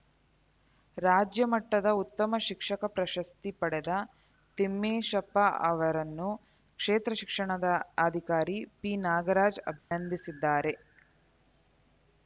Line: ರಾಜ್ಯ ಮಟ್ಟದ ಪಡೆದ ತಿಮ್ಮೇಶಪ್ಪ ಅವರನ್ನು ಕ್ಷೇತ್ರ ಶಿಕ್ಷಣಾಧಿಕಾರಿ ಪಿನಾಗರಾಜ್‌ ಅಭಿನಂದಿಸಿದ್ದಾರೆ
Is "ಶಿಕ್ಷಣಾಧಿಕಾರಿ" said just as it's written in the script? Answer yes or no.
yes